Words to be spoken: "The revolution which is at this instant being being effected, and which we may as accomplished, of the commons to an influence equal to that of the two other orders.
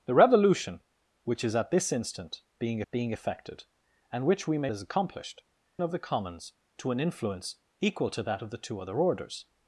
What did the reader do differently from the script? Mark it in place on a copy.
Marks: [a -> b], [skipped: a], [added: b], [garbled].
"The revolution which is at this instant being being effected, and which we may as accomplished, of the commons to an influence equal to that of the two other orders.